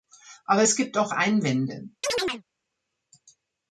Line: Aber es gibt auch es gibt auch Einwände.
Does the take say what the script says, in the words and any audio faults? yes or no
no